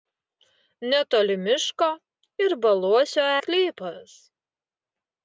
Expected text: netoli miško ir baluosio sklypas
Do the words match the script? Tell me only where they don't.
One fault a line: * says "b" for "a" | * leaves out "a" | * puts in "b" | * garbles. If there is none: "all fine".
all fine